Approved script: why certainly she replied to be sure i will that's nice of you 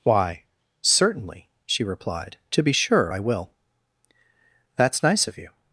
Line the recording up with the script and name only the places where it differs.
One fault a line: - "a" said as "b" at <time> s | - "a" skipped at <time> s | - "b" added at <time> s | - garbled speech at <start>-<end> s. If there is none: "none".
none